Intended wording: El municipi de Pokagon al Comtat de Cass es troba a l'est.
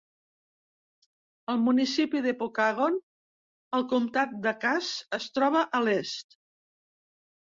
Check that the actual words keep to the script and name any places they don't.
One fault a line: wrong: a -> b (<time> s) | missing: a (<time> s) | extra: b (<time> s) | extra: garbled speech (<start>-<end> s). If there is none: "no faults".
no faults